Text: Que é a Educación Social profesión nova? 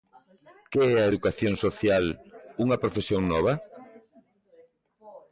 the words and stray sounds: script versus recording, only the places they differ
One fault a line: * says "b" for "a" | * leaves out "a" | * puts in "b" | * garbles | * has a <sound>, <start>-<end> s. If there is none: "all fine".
* puts in "unha"